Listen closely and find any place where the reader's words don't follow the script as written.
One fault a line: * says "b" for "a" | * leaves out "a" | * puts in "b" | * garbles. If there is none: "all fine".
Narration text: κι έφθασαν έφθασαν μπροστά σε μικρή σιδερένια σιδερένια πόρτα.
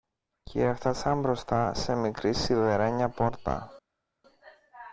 * leaves out "έφθασαν"
* leaves out "σιδερένια"